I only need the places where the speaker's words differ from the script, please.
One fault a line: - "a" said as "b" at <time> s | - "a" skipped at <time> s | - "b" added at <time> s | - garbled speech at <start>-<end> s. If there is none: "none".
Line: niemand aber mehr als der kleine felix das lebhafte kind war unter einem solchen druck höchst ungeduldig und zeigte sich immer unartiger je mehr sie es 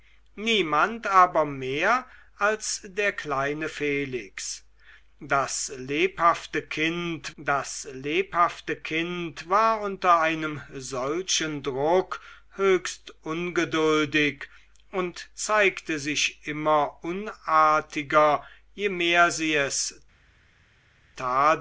- "das lebhafte kind" added at 7.4 s